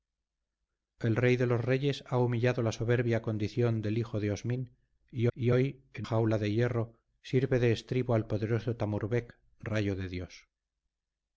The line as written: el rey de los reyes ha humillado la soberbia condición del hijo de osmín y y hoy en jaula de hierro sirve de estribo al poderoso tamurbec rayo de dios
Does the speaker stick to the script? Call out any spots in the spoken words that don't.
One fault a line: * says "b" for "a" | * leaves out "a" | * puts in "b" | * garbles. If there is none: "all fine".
all fine